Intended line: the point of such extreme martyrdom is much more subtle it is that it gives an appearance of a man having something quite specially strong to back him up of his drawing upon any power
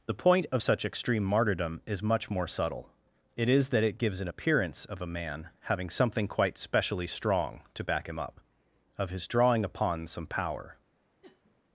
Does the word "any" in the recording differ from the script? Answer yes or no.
yes